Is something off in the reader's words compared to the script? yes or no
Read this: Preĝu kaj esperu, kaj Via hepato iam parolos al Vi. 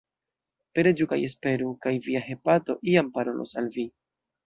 no